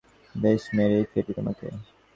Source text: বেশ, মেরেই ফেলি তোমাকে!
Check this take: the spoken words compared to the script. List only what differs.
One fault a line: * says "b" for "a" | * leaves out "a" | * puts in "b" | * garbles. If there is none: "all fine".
all fine